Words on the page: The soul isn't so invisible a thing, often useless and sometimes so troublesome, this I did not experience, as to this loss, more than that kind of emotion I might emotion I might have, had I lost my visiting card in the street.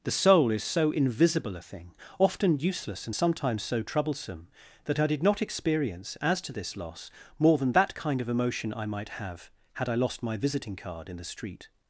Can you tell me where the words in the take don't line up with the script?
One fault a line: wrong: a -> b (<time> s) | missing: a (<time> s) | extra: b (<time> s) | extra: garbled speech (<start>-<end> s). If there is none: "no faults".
wrong: isn't -> is (0.5 s)
wrong: this -> that (4.9 s)
missing: emotion I might (9.1 s)